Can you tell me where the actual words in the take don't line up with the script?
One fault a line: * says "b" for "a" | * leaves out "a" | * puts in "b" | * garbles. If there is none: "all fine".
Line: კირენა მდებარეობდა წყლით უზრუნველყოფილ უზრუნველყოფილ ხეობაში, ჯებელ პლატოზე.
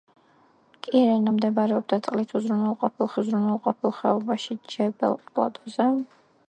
all fine